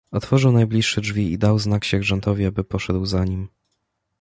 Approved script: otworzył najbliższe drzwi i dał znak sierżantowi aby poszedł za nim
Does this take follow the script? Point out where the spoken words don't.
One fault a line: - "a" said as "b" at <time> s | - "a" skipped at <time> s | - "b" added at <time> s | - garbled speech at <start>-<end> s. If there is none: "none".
none